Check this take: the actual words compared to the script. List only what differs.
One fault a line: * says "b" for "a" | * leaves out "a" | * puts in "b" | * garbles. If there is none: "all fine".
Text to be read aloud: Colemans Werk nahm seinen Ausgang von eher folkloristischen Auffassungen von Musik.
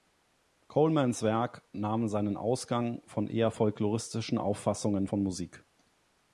all fine